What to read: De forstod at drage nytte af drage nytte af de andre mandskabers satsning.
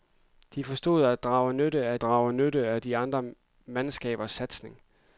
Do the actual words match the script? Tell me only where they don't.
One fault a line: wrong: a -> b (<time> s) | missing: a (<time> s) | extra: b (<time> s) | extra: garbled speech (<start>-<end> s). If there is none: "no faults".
no faults